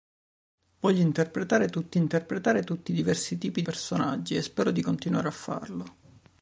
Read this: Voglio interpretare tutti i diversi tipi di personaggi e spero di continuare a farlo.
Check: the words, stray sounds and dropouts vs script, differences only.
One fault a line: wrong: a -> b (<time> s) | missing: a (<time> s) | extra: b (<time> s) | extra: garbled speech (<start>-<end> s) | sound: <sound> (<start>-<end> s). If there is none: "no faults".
extra: interpretare tutti (2.0 s)
missing: di (3.6 s)